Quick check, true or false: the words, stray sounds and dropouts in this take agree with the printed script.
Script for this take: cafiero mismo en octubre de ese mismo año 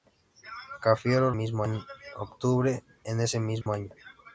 false